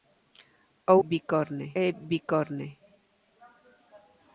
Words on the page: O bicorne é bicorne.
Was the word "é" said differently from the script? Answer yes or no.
no